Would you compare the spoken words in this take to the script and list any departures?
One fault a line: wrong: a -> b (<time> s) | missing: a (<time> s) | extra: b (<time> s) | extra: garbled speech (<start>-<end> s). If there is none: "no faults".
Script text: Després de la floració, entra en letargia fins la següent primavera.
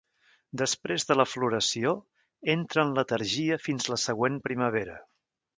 no faults